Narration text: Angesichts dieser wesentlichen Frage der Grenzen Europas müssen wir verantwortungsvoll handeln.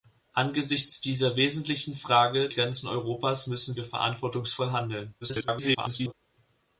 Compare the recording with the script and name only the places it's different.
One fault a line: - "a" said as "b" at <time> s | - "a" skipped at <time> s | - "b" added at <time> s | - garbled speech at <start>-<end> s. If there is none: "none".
- "der" skipped at 2.5 s
- garbled speech at 5.2-6.1 s